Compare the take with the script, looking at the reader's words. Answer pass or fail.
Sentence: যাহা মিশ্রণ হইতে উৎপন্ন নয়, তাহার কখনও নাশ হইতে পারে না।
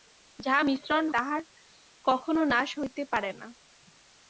fail